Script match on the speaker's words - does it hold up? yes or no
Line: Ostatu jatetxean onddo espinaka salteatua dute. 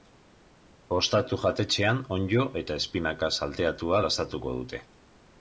no